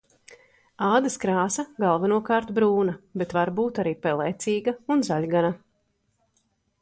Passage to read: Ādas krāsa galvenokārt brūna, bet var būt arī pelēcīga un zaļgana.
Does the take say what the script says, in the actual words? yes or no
yes